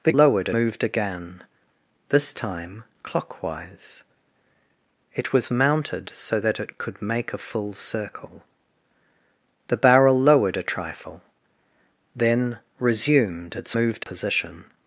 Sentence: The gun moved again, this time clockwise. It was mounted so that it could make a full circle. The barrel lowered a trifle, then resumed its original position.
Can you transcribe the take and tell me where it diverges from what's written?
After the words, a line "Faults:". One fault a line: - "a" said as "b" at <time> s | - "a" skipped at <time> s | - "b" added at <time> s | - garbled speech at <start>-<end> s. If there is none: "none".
The lowered moved again, this time clockwise. It was mounted so that it could make a full circle. The barrel lowered a trifle, then resumed its moved position.
Faults:
- "gun" said as "lowered" at 0.1 s
- "original" said as "moved" at 13.7 s